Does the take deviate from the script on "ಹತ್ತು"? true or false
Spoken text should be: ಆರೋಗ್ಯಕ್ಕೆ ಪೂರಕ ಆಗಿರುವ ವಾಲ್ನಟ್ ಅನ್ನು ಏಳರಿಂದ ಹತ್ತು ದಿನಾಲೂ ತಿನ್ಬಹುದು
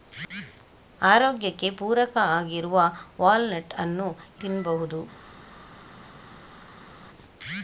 true